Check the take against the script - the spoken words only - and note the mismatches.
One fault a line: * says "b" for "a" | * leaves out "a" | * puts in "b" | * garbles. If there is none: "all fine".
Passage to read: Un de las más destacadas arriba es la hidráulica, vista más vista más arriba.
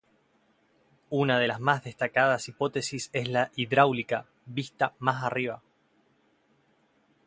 * says "Una" for "Un"
* says "hipótesis" for "arriba"
* leaves out "vista más"